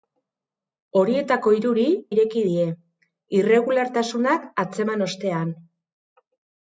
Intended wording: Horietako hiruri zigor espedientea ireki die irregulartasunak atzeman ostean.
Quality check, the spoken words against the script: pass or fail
fail